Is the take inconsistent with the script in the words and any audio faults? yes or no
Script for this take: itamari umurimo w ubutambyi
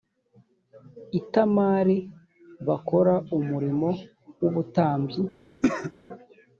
yes